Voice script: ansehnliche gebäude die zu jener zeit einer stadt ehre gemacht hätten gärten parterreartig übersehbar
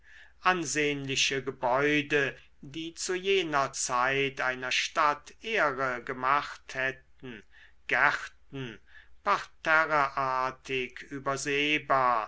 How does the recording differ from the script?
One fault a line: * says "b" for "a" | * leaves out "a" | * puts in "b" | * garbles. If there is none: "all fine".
all fine